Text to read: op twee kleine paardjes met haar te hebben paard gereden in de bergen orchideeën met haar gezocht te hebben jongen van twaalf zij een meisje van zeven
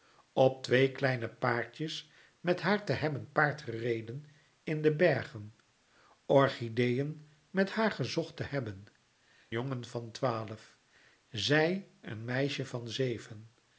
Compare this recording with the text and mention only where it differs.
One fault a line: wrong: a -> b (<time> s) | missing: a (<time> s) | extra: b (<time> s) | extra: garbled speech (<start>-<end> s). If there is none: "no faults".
no faults